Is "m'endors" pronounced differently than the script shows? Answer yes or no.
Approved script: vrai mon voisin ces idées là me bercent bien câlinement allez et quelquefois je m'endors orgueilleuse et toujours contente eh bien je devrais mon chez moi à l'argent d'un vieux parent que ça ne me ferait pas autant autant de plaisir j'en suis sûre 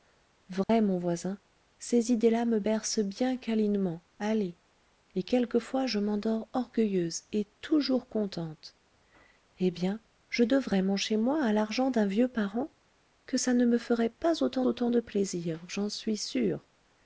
no